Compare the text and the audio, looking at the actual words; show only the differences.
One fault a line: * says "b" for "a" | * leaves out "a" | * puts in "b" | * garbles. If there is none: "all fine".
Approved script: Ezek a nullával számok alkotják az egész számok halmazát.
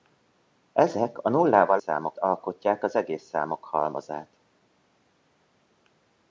all fine